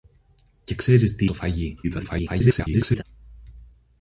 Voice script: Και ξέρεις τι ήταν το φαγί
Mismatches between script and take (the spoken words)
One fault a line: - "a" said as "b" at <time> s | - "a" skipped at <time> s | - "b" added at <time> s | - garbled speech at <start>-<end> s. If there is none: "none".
- "ήταν" skipped at 1.3 s
- garbled speech at 1.8-3.0 s